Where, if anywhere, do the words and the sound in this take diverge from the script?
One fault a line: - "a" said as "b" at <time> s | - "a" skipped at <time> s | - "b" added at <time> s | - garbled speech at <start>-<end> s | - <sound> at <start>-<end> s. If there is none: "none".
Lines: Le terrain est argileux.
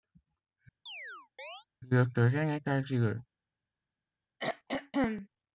- chirp at 0.9-1.7 s
- throat clearing at 4.4-5.3 s